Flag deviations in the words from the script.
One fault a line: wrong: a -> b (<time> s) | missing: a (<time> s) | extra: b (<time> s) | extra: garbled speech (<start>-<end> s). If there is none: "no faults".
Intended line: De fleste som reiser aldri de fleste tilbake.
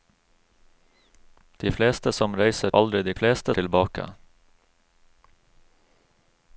no faults